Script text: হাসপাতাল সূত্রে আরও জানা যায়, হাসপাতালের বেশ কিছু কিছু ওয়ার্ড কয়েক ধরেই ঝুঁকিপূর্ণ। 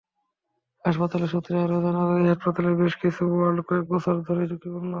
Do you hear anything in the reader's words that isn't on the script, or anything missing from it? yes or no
yes